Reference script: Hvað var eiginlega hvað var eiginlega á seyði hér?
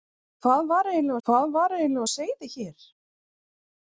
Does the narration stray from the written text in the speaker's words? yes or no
no